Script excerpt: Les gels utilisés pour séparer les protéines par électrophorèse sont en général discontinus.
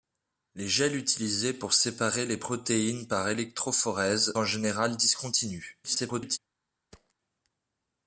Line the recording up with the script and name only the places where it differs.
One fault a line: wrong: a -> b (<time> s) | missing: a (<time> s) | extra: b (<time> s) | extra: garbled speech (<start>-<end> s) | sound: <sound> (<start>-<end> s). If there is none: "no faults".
missing: sont (4.3 s)
extra: garbled speech (5.8-6.4 s)
sound: thud (6.9-7.1 s)